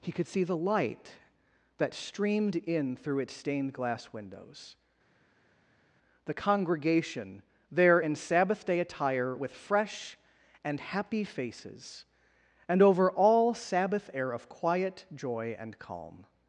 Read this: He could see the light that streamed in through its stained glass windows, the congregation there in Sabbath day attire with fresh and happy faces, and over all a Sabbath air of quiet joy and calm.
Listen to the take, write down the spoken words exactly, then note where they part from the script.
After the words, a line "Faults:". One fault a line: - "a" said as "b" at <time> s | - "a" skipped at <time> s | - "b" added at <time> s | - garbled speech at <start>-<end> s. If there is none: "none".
He could see the light that streamed in through its stained glass windows, the congregation there in Sabbath day attire with fresh and happy faces, and over all Sabbath air of quiet joy and calm.
Faults:
- "a" skipped at 13.5 s